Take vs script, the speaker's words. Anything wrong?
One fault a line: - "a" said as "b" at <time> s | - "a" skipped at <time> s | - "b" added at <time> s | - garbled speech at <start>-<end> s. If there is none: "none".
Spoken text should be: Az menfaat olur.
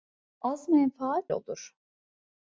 none